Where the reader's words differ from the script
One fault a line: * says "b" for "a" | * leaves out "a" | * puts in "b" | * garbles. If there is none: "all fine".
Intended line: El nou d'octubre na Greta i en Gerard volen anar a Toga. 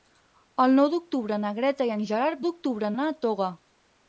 * says "d'octubre" for "volen"